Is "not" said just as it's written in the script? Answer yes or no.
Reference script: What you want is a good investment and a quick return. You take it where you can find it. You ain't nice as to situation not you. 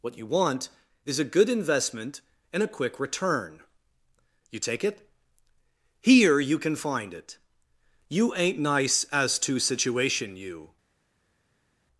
no